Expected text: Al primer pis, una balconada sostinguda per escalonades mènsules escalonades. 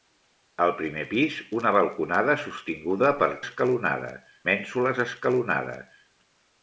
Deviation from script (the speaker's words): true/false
false